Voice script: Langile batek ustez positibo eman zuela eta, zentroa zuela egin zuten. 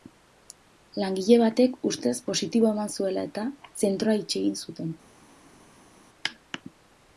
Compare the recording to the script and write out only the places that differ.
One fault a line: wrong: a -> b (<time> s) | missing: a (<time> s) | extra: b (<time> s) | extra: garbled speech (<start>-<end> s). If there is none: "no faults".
wrong: zuela -> itxi (4.2 s)